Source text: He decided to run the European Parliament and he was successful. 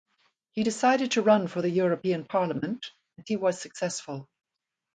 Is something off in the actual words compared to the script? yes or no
yes